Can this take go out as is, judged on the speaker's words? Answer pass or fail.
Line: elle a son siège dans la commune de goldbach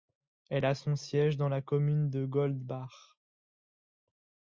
pass